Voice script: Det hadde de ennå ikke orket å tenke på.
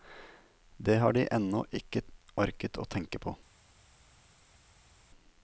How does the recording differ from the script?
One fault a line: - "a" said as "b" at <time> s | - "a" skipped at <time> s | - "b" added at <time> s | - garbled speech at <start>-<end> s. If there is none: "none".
- "hadde" said as "har" at 1.0 s